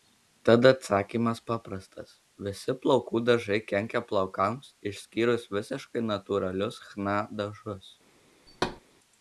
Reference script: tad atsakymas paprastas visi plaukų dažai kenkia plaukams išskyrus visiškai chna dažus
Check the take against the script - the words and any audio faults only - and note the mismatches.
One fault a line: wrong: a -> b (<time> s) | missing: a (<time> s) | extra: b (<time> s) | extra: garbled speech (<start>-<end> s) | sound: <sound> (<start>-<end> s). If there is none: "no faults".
extra: natūralius (6.1 s)
sound: thud (8.5-8.8 s)